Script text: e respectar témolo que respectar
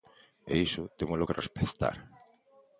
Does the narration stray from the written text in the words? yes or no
yes